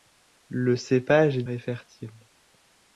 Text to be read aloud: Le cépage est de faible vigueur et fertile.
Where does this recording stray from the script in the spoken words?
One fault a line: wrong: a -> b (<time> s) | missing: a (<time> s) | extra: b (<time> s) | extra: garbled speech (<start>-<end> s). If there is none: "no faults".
missing: de faible vigueur (1.4 s)